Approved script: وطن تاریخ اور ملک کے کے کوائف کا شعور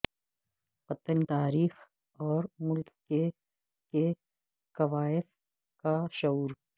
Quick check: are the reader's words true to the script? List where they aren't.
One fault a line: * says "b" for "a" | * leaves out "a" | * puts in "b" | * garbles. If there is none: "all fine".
all fine